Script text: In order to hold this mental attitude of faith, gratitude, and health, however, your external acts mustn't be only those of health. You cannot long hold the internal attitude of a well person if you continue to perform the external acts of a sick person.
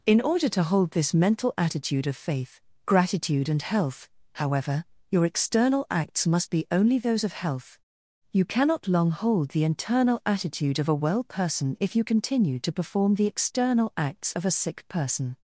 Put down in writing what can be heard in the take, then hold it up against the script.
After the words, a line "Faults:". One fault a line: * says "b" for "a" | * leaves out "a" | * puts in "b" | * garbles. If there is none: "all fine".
In order to hold this mental attitude of faith, gratitude, and health, however, your external acts must be only those of health. You cannot long hold the internal attitude of a well person if you continue to perform the external acts of a sick person.
Faults:
* says "must" for "mustn't"